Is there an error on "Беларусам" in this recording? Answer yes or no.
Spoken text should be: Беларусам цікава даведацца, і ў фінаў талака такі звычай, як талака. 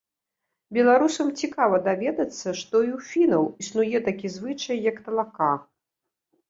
no